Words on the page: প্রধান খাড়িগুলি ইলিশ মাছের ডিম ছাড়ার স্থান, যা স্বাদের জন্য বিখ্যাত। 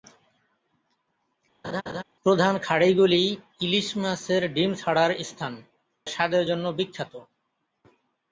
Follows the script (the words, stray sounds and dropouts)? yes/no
no